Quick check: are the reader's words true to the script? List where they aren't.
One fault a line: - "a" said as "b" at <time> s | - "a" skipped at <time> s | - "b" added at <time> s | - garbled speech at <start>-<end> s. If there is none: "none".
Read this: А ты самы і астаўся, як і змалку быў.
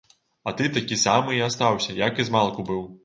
- "такі" added at 0.8 s